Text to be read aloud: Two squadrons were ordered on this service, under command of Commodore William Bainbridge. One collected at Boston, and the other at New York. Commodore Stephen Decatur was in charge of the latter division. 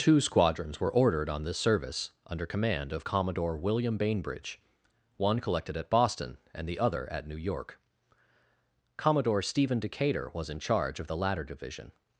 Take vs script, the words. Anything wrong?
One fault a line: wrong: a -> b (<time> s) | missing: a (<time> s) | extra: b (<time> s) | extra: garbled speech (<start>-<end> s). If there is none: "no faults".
no faults